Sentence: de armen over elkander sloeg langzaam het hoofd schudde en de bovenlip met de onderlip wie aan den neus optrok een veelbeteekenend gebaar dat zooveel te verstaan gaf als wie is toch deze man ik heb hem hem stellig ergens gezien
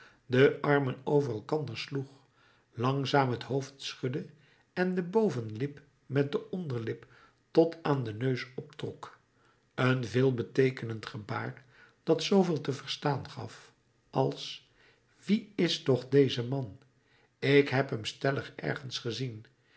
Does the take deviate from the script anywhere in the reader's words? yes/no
yes